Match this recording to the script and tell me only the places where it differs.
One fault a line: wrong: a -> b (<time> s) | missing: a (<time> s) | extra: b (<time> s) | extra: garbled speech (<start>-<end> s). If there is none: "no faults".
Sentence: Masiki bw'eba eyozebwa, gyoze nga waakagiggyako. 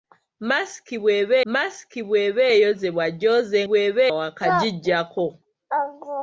extra: masiki bw'eba (1.5 s)
wrong: nga -> bw'eba (3.7 s)